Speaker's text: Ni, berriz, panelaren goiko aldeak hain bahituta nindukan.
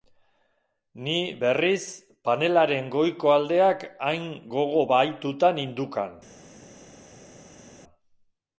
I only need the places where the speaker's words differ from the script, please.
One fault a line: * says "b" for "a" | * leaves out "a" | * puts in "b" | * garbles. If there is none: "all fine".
* puts in "gogo"